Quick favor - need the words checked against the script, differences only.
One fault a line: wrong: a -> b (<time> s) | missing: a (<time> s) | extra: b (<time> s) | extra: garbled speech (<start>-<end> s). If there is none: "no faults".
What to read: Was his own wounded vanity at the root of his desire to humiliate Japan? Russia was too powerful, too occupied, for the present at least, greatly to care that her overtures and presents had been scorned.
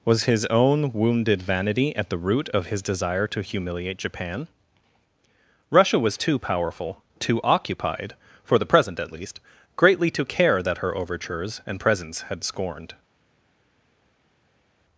missing: been (12.4 s)